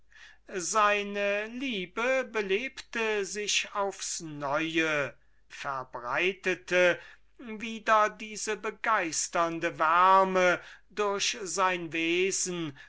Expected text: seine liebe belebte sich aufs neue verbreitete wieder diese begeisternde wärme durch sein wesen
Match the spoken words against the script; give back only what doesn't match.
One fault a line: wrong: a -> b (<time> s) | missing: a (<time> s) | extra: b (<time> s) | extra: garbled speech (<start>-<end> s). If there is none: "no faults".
no faults